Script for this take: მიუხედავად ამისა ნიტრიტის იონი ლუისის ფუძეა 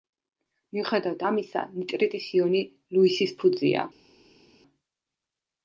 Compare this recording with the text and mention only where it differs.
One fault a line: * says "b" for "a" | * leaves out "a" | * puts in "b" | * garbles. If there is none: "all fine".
all fine